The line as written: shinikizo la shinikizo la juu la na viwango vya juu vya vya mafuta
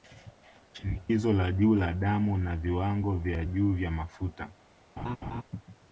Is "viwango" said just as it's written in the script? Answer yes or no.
yes